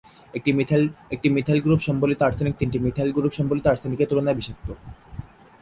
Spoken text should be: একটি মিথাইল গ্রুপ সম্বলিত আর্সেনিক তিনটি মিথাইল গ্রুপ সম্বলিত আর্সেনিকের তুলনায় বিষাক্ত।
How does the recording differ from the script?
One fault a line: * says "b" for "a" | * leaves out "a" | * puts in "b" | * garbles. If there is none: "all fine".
all fine